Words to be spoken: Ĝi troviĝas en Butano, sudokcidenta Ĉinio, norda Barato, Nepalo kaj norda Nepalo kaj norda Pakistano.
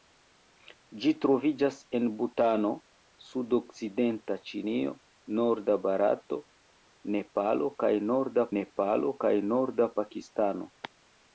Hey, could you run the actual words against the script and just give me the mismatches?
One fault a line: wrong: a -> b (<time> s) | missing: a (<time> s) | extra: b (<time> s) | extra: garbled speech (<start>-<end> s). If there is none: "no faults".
no faults